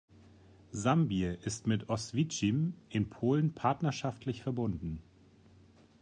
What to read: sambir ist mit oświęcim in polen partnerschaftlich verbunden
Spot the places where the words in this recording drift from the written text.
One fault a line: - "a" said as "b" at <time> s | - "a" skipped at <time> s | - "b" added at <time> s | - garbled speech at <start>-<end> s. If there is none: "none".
none